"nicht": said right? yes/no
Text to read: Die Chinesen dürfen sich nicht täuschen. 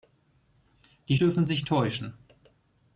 no